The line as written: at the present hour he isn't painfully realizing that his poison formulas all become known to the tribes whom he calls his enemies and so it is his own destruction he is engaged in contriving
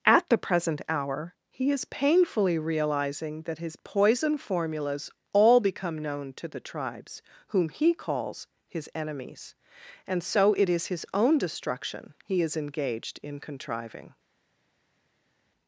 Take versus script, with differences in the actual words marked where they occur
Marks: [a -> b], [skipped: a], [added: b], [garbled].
at the present hour he [isn't -> is] painfully realizing that his poison formulas all become known to the tribes whom he calls his enemies and so it is his own destruction he is engaged in contriving